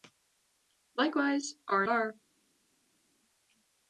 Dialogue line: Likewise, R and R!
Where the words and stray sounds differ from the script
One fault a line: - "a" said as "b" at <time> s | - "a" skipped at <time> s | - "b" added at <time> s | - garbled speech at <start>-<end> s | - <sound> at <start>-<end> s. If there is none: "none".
- "and" skipped at 1.8 s